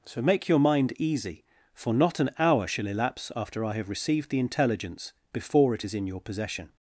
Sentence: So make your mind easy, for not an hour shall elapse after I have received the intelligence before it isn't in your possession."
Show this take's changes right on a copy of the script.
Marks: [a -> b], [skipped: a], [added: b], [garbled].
So make your mind easy, for not an hour shall elapse after I have received the intelligence before it [isn't -> is] in your possession."